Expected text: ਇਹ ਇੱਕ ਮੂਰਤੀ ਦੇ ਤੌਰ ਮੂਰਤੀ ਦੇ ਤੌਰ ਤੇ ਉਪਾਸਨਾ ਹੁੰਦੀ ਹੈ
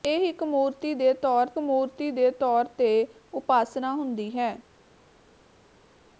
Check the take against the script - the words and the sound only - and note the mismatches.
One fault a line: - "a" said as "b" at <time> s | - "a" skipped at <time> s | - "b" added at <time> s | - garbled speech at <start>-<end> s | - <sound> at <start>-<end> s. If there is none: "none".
none